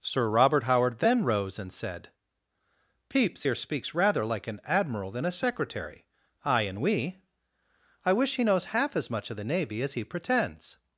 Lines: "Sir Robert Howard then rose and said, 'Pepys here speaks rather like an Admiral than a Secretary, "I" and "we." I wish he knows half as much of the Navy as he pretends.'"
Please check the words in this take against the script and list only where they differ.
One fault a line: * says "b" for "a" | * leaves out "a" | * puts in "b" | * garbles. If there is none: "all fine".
all fine